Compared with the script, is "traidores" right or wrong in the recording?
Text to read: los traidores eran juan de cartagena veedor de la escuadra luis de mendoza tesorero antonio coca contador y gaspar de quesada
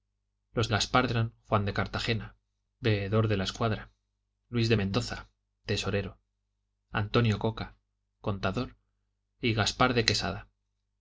wrong